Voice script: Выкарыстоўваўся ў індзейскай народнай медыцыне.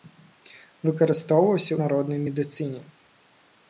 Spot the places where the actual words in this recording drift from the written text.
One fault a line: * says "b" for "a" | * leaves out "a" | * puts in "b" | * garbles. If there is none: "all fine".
* leaves out "ў індзейскай"